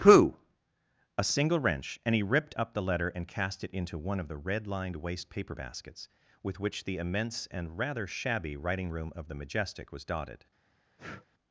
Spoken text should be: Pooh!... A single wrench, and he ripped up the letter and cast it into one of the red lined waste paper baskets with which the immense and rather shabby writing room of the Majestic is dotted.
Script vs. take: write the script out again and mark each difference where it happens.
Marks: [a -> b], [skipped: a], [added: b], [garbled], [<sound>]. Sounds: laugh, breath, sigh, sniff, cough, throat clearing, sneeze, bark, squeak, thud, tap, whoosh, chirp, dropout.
Pooh!... A single wrench, and he ripped up the letter and cast it into one of the red lined waste paper baskets with which the immense and rather shabby writing room of the Majestic [is -> was] dotted. [breath]